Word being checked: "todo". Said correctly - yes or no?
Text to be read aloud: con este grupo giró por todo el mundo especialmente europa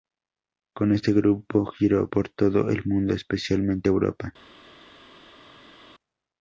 yes